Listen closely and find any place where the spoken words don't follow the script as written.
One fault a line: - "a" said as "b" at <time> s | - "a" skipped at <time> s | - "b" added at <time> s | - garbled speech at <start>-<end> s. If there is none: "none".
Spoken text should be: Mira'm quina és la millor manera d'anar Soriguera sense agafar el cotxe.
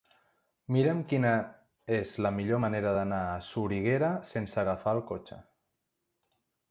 - "a" added at 3.3 s